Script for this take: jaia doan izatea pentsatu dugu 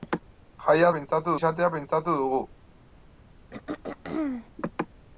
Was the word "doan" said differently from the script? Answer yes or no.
yes